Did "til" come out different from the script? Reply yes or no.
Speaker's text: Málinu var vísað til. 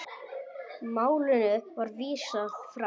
yes